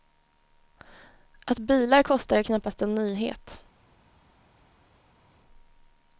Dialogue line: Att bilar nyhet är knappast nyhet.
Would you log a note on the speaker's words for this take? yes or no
yes